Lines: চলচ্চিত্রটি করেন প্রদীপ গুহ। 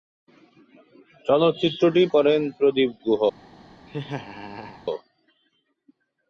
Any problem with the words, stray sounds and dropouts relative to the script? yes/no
yes